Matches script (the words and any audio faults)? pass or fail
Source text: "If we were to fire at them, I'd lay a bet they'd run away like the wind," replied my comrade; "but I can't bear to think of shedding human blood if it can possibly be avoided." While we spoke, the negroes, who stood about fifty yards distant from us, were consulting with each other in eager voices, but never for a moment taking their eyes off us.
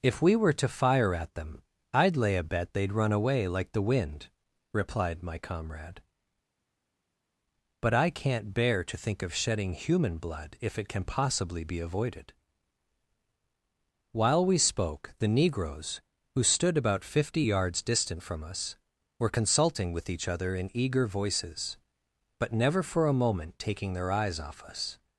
pass